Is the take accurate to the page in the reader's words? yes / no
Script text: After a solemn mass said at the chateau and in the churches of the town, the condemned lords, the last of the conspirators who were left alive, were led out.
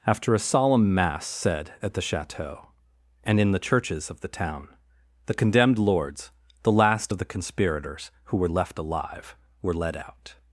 yes